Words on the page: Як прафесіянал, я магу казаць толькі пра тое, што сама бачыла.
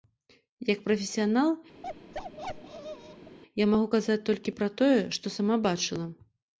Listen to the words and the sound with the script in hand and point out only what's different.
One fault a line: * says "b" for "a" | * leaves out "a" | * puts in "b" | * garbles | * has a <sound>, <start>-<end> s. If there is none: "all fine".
* has a bark, 1.8-3.4 s